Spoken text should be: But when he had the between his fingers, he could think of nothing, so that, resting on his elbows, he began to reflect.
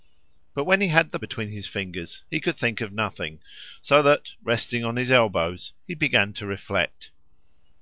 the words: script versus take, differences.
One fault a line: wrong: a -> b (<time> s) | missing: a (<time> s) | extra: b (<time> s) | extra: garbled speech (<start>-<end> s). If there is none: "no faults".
no faults